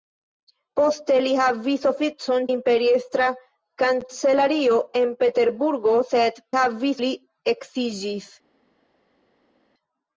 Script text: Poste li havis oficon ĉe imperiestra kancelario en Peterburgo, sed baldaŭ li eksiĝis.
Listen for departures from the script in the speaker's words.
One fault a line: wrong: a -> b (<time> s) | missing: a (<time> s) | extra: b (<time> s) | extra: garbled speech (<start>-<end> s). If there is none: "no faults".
missing: ĉe (2.5 s)
wrong: baldaŭ -> havis (6.6 s)